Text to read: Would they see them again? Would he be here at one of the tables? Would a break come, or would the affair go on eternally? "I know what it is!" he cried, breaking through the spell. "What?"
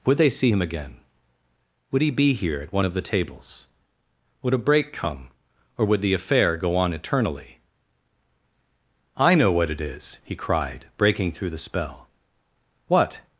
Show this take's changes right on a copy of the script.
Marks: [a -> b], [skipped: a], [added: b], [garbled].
Would they see [them -> him] again? Would he be here at one of the tables? Would a break come, or would the affair go on eternally? "I know what it is!" he cried, breaking through the spell. "What?"